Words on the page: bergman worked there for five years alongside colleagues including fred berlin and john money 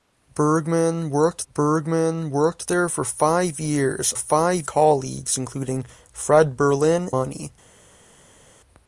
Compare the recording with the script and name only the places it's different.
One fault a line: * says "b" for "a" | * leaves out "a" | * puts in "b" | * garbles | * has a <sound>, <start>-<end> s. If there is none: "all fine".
* puts in "bergman worked"
* says "five" for "alongside"
* leaves out "and john"